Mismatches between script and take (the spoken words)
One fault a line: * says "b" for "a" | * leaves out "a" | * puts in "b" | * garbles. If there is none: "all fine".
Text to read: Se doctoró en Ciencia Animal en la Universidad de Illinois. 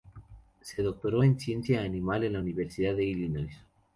all fine